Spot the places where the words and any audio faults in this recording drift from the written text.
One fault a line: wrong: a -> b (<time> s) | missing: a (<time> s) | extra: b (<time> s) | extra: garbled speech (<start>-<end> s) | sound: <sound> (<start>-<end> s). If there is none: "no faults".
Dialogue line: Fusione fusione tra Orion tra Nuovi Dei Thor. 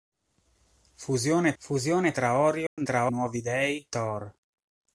sound: dropout (2.7-2.8 s)